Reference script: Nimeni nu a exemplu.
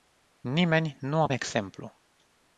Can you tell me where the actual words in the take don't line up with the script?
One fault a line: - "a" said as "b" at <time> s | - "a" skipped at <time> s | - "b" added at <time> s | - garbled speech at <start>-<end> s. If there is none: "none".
none